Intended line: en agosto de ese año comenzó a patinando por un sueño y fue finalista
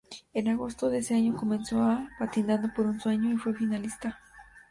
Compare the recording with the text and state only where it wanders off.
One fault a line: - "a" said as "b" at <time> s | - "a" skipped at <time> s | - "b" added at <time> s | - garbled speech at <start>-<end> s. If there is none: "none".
none